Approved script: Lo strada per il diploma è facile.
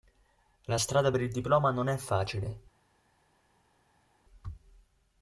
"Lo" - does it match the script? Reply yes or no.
no